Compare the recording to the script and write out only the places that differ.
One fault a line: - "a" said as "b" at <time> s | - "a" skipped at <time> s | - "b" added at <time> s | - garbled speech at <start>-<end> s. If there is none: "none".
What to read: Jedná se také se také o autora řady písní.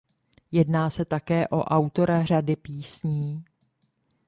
- "se také" skipped at 1.5 s